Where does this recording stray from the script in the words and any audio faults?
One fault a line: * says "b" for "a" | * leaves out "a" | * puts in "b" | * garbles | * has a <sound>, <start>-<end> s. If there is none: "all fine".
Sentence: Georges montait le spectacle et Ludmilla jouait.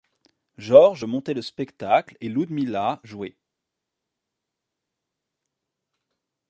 all fine